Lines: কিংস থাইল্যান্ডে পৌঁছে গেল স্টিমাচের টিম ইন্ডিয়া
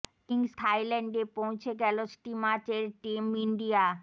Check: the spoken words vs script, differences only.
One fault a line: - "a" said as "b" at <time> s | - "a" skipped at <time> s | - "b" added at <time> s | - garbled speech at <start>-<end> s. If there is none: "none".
none